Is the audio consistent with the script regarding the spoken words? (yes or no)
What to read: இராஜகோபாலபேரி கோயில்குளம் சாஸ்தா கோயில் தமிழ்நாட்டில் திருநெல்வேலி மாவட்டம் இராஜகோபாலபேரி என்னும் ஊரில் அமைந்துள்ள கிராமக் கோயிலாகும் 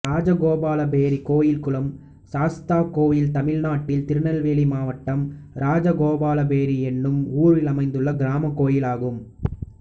yes